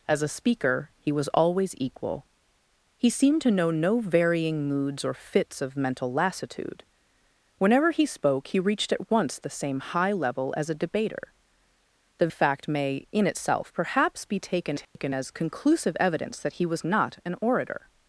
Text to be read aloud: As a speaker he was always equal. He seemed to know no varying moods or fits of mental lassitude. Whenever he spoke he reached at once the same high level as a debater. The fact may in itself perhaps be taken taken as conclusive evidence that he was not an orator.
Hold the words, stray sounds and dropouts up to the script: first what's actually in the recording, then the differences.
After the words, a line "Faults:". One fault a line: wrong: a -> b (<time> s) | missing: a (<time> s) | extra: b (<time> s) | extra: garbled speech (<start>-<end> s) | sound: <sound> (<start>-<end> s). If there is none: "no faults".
As a speaker he was always equal. He seemed to know no varying moods or fits of mental lassitude. Whenever he spoke he reached at once the same high level as a debater. The fact may in itself perhaps be taken taken as conclusive evidence that he was not an orator.
Faults:
sound: dropout (14.8-15.0 s)